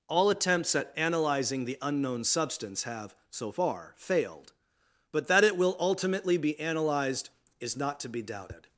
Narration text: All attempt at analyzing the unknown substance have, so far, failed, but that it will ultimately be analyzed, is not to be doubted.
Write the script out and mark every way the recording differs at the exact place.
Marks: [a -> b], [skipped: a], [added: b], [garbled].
All [attempt -> attempts] at analyzing the unknown substance have, so far, failed, but that it will ultimately be analyzed, is not to be doubted.